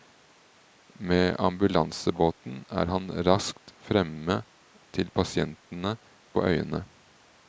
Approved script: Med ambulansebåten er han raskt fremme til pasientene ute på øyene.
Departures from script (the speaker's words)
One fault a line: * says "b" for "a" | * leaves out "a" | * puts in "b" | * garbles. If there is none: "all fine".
* leaves out "ute"